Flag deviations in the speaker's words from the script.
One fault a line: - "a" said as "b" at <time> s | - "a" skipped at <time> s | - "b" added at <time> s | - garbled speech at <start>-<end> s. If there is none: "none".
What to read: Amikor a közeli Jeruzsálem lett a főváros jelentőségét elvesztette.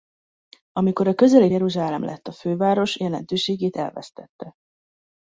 none